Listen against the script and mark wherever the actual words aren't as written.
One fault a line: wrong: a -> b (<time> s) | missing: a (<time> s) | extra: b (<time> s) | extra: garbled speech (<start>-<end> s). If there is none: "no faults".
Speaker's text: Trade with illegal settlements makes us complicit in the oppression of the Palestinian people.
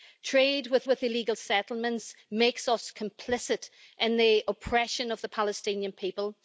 extra: with (0.8 s)